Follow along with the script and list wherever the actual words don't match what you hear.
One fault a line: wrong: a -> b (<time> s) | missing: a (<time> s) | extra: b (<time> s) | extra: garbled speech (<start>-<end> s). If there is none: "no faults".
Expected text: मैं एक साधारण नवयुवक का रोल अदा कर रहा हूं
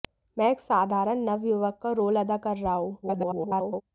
extra: garbled speech (3.0-3.8 s)